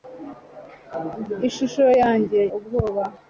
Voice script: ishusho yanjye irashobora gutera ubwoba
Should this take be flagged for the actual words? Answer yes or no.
yes